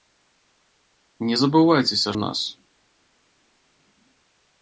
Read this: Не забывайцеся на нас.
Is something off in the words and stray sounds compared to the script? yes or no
no